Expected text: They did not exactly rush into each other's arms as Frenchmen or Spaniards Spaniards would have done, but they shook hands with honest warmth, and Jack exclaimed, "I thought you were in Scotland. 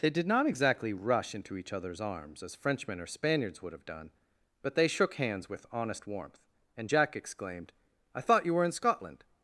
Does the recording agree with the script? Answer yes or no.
no